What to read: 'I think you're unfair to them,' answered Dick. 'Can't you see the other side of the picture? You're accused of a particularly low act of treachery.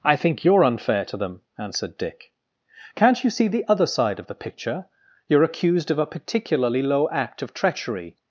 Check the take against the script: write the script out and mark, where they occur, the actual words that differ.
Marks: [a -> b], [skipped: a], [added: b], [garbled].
'I think you're unfair to them,' answered Dick. 'Can't you see the other side of the picture? You're accused of a particularly low act of treachery.